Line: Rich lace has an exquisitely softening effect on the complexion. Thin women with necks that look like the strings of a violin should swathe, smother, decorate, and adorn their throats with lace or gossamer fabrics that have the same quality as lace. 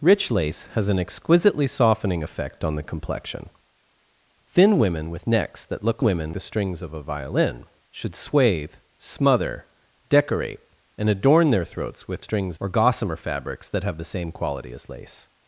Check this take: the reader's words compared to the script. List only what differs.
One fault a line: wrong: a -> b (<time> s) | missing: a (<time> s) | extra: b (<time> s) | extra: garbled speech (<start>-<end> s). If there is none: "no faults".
wrong: like -> women (6.0 s)
wrong: lace -> strings (12.2 s)